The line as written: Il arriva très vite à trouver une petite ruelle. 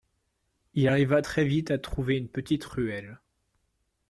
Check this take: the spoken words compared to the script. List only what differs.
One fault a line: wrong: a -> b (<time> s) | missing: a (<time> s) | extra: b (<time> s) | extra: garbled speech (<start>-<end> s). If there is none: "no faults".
no faults